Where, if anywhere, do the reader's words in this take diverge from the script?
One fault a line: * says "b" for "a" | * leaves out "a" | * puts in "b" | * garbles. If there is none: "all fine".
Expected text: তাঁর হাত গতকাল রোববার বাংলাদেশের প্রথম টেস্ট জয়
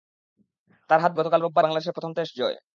all fine